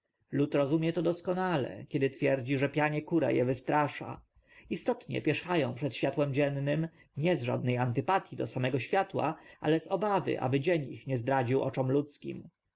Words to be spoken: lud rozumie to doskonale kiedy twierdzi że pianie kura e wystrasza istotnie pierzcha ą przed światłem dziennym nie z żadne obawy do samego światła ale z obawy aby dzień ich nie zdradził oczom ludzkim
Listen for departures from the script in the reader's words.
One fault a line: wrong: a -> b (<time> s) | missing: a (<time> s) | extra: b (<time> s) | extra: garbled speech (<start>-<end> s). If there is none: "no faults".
wrong: obawy -> antypatii (7.8 s)